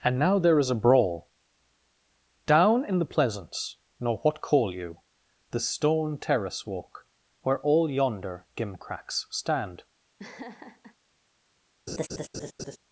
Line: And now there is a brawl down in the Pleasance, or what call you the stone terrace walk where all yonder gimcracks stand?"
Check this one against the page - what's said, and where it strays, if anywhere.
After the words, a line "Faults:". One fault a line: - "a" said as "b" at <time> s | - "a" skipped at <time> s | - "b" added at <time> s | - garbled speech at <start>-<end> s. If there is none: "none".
And now there is a brawl down in the Pleasance, nor what call you the stone terrace walk where all yonder gimcracks stand?"
Faults:
- "or" said as "nor" at 4.0 s